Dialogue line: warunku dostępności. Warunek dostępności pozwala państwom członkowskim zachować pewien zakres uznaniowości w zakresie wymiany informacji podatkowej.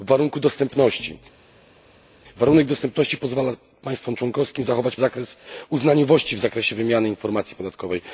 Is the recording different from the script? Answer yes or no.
yes